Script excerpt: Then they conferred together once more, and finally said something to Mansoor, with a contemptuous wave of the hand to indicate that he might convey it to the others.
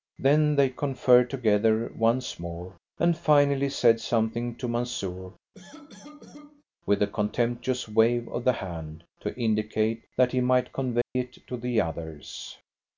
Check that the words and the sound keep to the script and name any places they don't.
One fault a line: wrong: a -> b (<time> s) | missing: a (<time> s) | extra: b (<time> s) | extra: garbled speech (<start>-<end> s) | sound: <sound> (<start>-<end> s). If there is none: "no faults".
sound: cough (5.5-6.6 s)
sound: dropout (11.0-11.2 s)